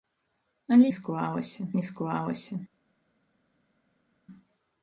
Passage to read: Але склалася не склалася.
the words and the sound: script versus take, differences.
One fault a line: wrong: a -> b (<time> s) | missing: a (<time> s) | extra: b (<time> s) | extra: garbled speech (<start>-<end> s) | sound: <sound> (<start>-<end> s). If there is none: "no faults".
no faults